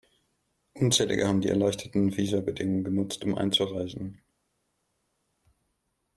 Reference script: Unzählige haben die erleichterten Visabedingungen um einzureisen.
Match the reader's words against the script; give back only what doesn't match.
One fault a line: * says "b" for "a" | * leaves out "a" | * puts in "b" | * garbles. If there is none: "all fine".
* puts in "genutzt"